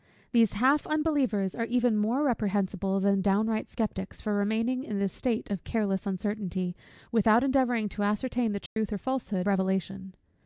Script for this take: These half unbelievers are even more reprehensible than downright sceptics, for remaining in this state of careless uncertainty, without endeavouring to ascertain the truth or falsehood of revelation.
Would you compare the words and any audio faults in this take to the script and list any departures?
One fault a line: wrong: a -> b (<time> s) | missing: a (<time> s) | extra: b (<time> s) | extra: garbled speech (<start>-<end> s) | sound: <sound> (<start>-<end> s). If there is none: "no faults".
sound: dropout (8.7-8.8 s)
missing: of (9.5 s)